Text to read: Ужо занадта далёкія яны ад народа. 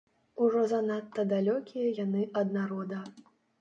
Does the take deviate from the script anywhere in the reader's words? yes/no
no